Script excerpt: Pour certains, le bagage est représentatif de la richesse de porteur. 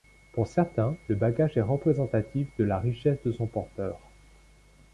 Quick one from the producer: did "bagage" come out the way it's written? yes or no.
yes